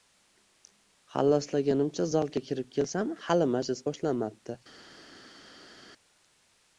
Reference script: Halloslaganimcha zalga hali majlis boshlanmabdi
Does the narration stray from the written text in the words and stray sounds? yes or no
yes